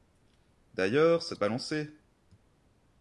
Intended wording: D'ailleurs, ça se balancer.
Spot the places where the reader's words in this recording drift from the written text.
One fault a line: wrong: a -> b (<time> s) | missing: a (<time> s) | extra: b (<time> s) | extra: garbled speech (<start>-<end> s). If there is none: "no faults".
no faults